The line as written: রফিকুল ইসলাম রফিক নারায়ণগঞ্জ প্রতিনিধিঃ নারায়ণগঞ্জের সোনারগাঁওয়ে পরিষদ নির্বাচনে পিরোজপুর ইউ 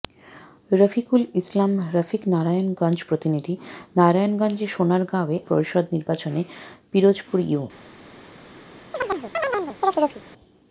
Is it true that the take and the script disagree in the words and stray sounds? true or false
true